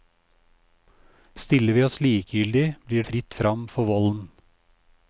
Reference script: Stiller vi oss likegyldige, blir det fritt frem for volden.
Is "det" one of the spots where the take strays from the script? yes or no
yes